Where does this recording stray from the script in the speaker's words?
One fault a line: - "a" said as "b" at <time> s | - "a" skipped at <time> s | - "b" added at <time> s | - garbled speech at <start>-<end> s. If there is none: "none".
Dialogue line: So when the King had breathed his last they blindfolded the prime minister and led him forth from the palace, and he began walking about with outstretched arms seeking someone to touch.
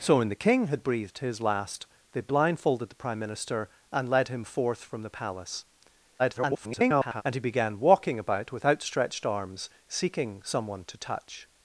- garbled speech at 6.2-7.2 s